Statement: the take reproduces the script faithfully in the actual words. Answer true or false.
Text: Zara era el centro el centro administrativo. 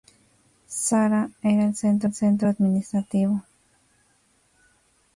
true